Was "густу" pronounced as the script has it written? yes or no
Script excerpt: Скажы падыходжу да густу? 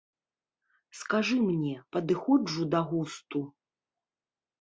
yes